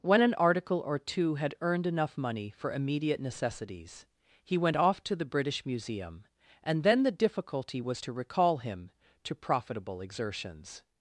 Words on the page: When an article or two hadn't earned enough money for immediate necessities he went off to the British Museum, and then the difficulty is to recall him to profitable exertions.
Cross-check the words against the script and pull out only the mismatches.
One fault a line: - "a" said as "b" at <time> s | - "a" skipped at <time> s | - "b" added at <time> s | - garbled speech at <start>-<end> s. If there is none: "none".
- "hadn't" said as "had" at 1.4 s
- "is" said as "was" at 7.8 s